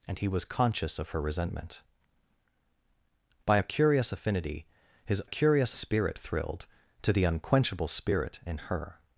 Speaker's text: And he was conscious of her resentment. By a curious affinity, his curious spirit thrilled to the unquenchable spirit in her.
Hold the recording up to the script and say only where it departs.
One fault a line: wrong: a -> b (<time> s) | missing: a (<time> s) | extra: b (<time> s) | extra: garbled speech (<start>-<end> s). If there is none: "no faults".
no faults